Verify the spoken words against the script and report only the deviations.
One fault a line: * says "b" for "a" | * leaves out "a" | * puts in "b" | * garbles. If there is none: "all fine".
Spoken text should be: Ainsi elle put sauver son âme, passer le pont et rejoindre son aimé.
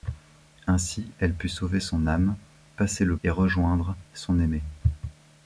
* leaves out "pont"